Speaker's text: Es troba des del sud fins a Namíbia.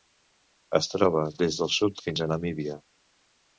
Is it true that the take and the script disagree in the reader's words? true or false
false